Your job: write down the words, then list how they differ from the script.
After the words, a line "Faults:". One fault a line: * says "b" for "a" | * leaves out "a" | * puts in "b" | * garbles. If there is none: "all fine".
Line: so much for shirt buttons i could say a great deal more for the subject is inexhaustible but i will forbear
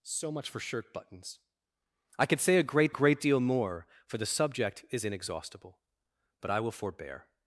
so much for shirt buttons i could say a great great deal more for the subject is inexhaustible but i will forbear
Faults:
* puts in "great"